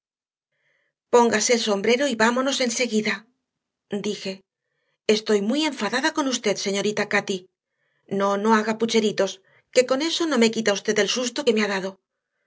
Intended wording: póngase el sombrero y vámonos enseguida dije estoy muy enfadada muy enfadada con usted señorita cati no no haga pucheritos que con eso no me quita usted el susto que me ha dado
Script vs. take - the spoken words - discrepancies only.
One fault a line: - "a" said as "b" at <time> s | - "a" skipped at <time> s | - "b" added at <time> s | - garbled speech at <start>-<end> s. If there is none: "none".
- "muy enfadada" skipped at 6.1 s